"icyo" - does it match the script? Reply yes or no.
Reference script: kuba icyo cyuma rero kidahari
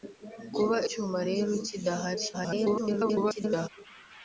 no